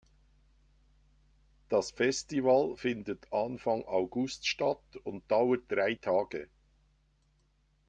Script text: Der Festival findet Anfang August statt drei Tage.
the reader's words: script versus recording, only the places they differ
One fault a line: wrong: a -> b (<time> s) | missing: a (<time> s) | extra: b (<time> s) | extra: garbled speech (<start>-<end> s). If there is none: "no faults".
wrong: Der -> Das (1.7 s)
extra: und dauert (4.9 s)